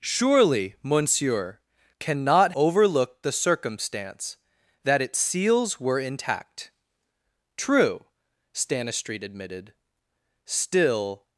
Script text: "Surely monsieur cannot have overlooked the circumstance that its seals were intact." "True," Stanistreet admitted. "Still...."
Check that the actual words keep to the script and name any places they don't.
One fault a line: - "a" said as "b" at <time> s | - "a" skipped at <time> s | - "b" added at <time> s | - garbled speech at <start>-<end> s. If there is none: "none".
- "have" skipped at 2.5 s